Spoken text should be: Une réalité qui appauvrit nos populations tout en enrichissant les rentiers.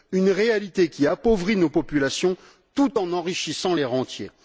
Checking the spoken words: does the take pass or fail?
pass